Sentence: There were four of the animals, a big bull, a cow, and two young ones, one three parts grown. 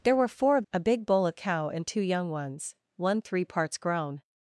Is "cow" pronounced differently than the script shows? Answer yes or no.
no